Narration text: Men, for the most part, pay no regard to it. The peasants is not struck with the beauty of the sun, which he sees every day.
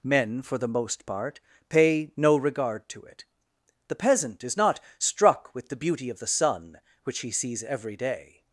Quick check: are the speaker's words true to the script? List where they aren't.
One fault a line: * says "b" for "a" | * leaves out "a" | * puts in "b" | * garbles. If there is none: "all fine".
* says "peasant" for "peasants"